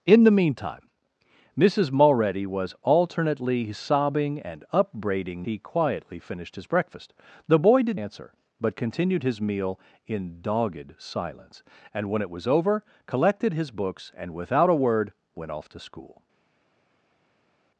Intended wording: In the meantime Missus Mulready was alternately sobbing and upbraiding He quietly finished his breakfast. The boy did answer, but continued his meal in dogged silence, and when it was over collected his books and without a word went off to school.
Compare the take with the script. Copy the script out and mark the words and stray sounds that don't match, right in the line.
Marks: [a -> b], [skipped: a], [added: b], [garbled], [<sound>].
In the meantime Missus Mulready was alternately sobbing and upbraiding He quietly finished his breakfast. The boy did answer, but continued his meal in dogged silence, and when it was over collected his books and without a word went off to school.